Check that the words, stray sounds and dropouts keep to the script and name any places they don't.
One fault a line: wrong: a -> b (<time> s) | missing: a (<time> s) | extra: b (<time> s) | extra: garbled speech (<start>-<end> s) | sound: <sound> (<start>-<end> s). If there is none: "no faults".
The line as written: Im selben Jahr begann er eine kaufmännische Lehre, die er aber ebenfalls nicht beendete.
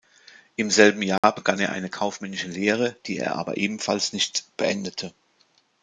sound: dropout (1.2-1.2 s)